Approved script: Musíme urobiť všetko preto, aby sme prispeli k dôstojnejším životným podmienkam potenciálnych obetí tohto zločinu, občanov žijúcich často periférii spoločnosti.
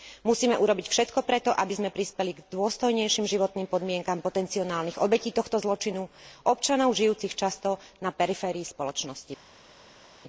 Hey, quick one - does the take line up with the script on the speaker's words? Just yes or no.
no